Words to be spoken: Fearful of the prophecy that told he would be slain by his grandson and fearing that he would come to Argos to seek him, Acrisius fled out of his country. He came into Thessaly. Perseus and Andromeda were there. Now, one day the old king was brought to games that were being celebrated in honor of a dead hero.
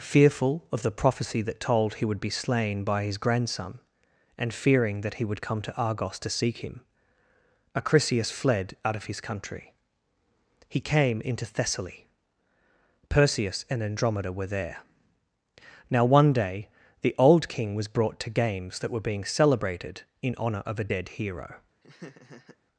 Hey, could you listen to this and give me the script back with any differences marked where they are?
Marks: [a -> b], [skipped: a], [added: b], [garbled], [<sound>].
Fearful of the prophecy that told he would be slain by his grandson and fearing that he would come to Argos to seek him, Acrisius fled out of his country. He came into Thessaly. Perseus and Andromeda were there. Now, one day the old king was brought to games that were being celebrated in honor of a dead hero. [laugh]